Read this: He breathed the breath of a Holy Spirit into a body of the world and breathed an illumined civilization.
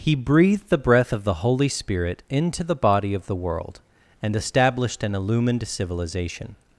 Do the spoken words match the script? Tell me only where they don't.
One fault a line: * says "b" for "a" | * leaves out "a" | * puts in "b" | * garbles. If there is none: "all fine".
* says "the" for "a"
* says "the" for "a"
* says "established" for "breathed"